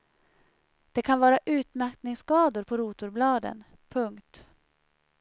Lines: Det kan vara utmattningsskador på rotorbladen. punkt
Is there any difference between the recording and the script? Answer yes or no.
no